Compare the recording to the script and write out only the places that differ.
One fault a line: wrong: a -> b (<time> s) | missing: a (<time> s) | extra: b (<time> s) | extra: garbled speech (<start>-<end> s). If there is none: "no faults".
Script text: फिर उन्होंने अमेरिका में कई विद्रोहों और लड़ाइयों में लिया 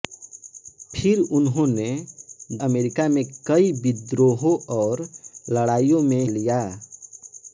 no faults